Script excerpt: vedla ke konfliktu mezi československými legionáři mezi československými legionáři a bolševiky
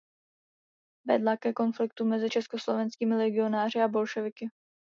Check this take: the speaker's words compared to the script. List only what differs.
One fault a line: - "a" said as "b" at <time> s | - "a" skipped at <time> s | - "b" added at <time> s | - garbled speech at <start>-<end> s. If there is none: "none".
- "mezi československými legionáři" skipped at 3.8 s